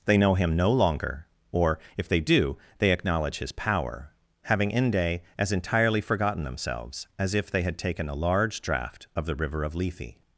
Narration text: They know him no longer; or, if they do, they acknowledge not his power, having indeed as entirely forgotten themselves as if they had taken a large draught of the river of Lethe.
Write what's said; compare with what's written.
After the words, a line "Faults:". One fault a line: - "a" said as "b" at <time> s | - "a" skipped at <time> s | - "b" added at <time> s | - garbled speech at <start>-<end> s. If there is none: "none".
They know him no longer; or, if they do, they acknowledge his power, having inde as entirely forgotten themselves as if they had taken a large draught of the river of Lethe.
Faults:
- "not" skipped at 3.4 s
- "indeed" said as "inde" at 4.7 s